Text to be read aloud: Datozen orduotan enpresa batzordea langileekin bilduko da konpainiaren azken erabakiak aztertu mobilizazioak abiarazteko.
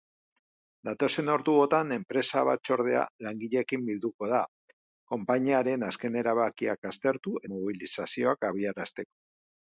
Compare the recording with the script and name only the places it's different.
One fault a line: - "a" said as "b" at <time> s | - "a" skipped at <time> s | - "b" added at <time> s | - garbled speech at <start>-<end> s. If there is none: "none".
none